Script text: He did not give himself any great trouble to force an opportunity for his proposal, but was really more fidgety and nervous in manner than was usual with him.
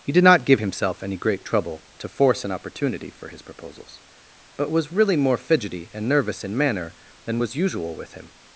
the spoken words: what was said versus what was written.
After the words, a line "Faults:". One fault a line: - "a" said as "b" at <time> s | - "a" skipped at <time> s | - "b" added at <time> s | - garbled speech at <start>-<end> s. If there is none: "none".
He did not give himself any great trouble to force an opportunity for his proposals, but was really more fidgety and nervous in manner than was usual with him.
Faults:
- "proposal" said as "proposals" at 3.4 s